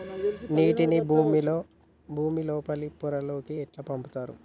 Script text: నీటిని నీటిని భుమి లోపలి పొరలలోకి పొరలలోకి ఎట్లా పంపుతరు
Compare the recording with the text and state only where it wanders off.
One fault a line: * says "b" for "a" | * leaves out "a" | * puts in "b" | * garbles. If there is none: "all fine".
* leaves out "నీటిని"
* leaves out "పొరలలోకి"